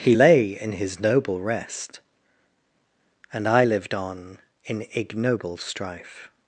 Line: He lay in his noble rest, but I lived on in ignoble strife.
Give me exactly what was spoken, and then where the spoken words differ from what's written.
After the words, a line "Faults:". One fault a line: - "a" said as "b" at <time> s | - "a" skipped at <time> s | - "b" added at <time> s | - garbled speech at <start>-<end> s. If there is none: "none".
He lay in his noble rest, and I lived on in ignoble strife.
Faults:
- "but" said as "and" at 3.3 s